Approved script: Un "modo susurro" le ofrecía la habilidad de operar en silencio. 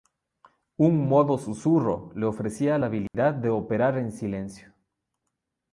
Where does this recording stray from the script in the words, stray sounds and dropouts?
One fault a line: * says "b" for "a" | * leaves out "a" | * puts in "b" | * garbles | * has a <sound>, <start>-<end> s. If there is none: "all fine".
* has a dropout, 3.1-3.1 s